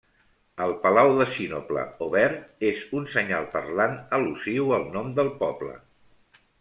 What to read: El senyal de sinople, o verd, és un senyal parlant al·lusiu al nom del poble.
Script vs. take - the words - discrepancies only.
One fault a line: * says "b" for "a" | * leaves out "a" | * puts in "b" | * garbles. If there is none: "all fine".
* says "palau" for "senyal"